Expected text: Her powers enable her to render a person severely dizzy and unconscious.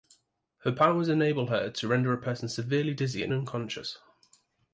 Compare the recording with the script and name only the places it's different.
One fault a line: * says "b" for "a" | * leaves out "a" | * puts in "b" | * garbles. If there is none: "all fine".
all fine